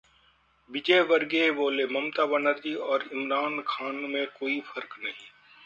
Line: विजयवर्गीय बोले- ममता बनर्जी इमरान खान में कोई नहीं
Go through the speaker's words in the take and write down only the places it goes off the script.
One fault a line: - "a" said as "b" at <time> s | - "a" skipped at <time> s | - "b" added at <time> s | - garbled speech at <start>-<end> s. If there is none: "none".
- "और" added at 2.9 s
- "फर्क" added at 4.7 s